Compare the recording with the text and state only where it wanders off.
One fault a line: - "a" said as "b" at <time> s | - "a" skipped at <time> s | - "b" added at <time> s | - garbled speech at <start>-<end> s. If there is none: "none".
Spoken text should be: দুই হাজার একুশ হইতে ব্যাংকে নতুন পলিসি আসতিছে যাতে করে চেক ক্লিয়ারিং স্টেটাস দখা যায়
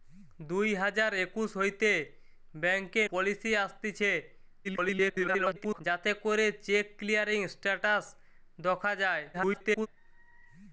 - "নতুন" skipped at 3.0 s
- garbled speech at 4.6-5.8 s
- garbled speech at 9.3-9.9 s